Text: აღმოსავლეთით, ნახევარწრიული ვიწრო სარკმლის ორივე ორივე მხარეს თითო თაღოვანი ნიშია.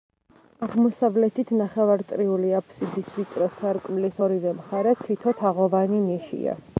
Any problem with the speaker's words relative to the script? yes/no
yes